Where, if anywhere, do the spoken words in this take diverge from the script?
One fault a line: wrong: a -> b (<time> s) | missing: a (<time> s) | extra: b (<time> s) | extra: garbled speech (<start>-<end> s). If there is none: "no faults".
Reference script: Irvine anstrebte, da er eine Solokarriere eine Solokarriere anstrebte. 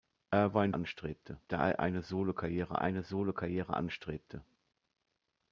no faults